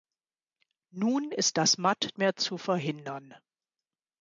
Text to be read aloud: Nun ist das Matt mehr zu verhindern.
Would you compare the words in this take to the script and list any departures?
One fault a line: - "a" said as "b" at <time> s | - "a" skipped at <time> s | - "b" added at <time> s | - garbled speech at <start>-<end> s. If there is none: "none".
none